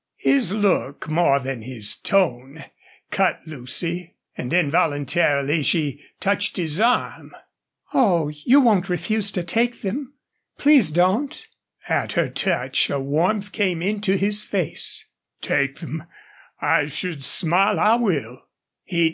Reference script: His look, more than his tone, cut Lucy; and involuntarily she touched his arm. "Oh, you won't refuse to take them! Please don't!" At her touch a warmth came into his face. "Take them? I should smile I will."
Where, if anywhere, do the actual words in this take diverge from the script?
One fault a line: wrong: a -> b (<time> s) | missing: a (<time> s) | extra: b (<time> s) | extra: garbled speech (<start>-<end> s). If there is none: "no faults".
no faults